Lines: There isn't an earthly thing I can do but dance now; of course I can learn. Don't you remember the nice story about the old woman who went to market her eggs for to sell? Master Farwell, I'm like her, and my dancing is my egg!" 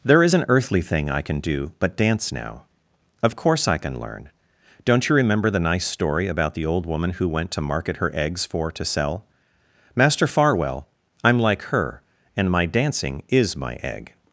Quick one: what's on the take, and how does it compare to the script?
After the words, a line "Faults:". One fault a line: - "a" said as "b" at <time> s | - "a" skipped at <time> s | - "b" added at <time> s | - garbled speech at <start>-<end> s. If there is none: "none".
There is an earthly thing I can do but dance now; of course I can learn. Don't you remember the nice story about the old woman who went to market her eggs for to sell? Master Farwell, I'm like her, and my dancing is my egg!"
Faults:
- "isn't" said as "is" at 0.2 s